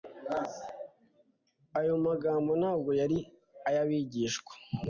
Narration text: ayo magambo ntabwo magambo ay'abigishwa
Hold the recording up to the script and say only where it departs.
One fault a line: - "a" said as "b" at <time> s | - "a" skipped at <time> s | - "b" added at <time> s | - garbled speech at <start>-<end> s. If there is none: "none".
- "magambo" said as "yari" at 3.0 s